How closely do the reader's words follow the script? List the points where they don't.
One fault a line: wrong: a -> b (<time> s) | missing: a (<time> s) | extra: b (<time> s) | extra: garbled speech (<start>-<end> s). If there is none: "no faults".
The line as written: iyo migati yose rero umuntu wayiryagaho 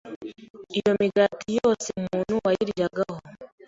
missing: rero (1.9 s)